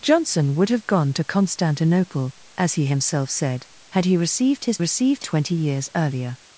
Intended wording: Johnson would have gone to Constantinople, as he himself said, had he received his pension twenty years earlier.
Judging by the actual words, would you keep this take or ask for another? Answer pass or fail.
fail